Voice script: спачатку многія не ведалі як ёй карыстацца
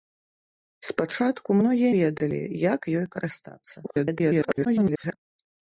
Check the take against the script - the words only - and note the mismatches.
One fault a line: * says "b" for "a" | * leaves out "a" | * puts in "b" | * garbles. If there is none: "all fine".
* leaves out "не"
* garbles